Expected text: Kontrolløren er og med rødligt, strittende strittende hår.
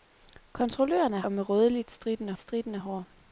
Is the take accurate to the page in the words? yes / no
yes